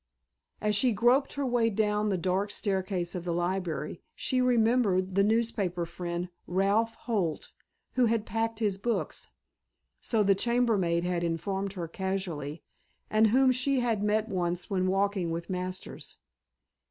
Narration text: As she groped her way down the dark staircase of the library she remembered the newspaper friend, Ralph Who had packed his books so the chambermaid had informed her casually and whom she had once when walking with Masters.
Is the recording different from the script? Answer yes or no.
yes